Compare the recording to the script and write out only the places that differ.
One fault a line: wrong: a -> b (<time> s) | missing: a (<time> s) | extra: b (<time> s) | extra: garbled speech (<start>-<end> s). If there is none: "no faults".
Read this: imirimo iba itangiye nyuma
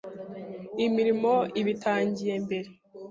wrong: nyuma -> mbere (2.4 s)